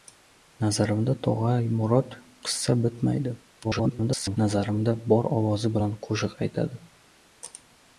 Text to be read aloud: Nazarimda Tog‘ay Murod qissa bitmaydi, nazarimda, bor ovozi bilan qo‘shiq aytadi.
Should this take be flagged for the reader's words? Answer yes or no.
yes